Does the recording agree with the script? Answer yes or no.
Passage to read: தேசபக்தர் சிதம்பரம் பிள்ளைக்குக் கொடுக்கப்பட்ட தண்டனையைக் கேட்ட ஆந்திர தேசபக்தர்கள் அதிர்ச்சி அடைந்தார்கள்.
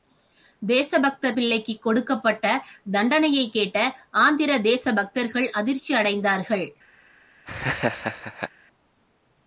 no